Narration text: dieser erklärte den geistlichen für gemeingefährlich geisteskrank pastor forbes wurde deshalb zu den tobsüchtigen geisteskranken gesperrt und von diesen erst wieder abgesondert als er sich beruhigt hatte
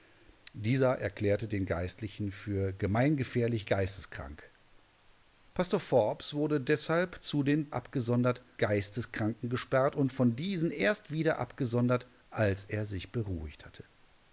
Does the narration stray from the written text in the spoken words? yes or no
yes